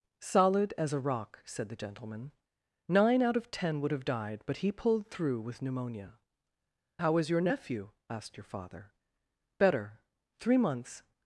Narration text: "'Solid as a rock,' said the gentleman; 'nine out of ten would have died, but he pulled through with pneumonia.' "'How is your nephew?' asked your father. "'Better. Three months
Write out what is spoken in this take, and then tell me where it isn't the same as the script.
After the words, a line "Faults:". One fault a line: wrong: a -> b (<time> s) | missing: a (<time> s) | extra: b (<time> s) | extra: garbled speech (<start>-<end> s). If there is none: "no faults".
"'Solid as a rock,' said the gentleman; 'nine out of ten would have died, but he pulled through with pneumonia.' "'How is your nephew?' asked your father. "'Better. Three months
Faults:
no faults